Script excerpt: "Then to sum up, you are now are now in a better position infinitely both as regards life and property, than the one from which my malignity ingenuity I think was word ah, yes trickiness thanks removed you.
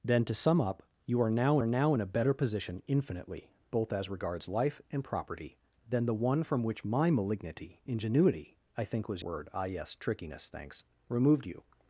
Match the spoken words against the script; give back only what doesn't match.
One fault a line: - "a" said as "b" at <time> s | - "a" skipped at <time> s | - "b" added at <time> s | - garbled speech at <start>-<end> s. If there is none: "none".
none